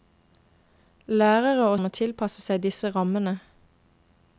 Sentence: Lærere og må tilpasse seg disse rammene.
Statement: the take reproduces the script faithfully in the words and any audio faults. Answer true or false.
true